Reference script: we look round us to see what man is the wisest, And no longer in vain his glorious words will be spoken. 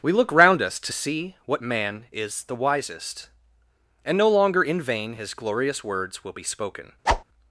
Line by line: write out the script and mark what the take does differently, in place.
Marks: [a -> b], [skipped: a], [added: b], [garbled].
we look round us to see what man is the wisest, And no longer in vain his glorious words will be spoken.